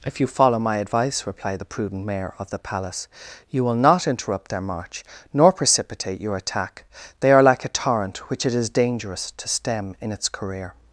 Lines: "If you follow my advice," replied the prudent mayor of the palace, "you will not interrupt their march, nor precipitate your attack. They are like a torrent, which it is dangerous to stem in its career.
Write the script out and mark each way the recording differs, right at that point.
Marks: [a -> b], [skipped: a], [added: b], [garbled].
"If you follow my advice," replied the prudent mayor of the palace, "you will not interrupt their march, nor precipitate your attack. They are like a torrent, which it is dangerous to stem in its career.